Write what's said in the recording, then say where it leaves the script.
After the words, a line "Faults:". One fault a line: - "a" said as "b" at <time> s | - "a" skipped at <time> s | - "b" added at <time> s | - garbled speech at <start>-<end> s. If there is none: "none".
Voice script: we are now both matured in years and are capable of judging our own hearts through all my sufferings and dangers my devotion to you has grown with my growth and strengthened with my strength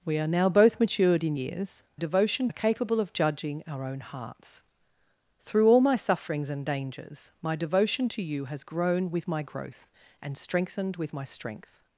we are now both matured in years devotion are capable of judging our own hearts through all my sufferings and dangers my devotion to you has grown with my growth and strengthened with my strength
Faults:
- "and" said as "devotion" at 1.9 s